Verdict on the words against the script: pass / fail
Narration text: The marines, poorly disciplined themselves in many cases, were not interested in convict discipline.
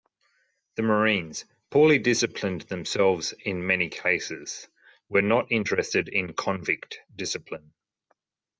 pass